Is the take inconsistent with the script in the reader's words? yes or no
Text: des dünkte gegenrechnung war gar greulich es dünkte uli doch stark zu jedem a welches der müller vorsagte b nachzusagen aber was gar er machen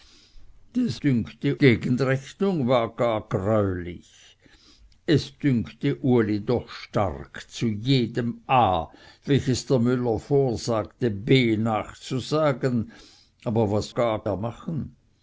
no